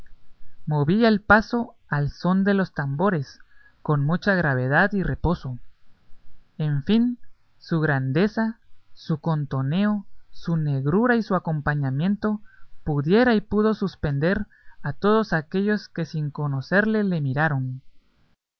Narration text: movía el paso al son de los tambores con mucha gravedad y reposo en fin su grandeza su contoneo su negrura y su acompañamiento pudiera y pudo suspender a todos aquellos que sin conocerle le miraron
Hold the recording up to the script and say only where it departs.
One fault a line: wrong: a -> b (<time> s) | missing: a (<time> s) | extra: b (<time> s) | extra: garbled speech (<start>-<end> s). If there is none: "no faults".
no faults